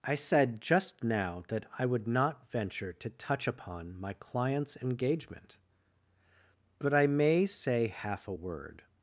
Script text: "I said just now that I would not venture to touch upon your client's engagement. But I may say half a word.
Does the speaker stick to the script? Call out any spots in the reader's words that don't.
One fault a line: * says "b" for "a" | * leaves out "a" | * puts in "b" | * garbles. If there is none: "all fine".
* says "my" for "your"